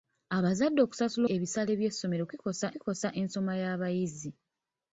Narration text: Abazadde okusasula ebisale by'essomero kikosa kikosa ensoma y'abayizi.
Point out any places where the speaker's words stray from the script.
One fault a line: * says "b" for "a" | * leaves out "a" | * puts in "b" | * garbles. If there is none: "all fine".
all fine